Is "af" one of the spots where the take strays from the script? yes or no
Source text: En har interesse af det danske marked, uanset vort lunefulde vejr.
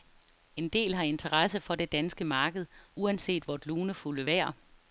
yes